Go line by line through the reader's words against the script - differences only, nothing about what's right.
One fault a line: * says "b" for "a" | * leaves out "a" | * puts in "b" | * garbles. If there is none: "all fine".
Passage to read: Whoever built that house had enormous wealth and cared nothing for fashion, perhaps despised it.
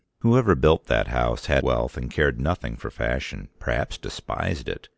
* leaves out "enormous"